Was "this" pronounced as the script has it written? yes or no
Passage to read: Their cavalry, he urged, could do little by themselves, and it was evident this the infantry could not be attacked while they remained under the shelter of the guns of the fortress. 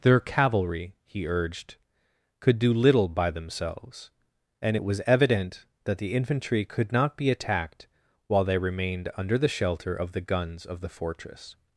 no